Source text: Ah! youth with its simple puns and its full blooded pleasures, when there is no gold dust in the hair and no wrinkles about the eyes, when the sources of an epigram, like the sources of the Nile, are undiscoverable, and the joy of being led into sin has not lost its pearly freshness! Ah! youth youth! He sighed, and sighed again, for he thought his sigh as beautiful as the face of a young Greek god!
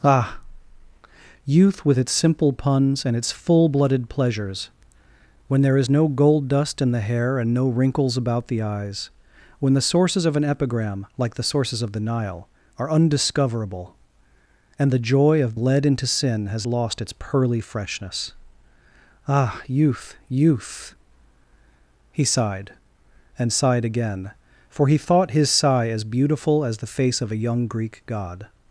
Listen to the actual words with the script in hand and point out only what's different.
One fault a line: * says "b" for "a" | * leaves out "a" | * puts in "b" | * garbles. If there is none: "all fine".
* leaves out "being"
* leaves out "not"